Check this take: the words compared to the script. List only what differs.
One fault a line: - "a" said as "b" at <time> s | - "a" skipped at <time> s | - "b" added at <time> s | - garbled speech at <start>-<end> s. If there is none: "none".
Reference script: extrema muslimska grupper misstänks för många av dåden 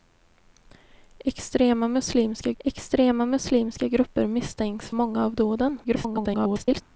- "extrema muslimska" added at 2.6 s
- "för" skipped at 4.9 s
- garbled speech at 5.8-6.8 s